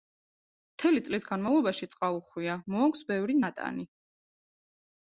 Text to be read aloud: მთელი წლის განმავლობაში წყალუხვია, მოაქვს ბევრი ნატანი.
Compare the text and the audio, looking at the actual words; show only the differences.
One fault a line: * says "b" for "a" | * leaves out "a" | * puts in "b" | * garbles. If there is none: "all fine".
all fine